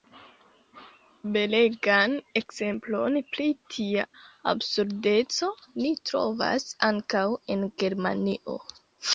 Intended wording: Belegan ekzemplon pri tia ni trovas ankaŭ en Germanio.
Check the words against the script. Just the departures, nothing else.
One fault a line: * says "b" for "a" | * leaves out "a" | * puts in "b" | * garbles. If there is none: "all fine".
* puts in "absurdeco"